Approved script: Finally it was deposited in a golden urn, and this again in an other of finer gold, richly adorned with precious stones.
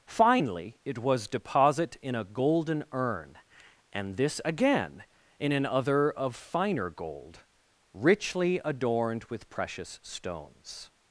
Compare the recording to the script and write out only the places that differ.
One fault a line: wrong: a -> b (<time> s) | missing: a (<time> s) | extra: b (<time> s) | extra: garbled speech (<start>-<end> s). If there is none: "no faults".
wrong: deposited -> deposit (1.3 s)